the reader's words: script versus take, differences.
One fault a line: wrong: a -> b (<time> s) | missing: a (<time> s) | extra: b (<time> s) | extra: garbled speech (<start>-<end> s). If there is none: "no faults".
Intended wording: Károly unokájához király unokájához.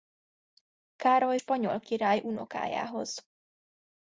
wrong: unokájához -> spanyol (1.3 s)